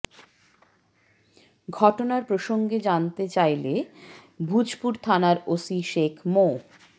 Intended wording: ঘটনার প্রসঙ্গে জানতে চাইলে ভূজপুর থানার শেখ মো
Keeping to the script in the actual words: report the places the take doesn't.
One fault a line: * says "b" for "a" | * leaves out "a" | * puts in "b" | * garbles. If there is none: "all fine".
* puts in "ওসি"